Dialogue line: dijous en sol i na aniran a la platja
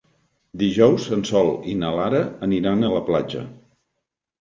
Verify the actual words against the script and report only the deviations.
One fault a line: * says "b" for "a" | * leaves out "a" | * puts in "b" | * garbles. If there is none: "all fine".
* puts in "lara"